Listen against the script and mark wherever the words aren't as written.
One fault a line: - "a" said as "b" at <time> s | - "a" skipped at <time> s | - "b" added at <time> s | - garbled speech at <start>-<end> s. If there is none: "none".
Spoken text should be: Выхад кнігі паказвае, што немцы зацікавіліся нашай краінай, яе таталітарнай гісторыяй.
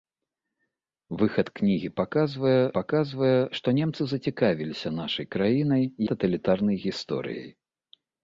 - "паказвае" added at 2.8 s
- "яе" skipped at 5.8 s